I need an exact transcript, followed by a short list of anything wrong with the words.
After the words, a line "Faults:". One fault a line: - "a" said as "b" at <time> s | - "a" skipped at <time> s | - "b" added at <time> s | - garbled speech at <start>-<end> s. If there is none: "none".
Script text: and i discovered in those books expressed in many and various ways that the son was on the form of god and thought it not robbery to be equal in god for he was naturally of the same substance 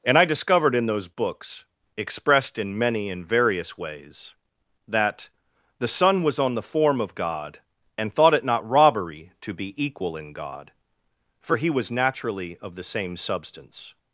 and i discovered in those books expressed in many and various ways that the son was on the form of god and thought it not robbery to be equal in god for he was naturally of the same substance
Faults:
none